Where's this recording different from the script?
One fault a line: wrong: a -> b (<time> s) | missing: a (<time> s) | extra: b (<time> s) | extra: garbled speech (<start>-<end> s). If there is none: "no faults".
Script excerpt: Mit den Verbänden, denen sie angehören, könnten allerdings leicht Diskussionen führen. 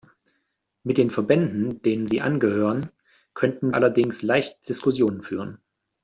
no faults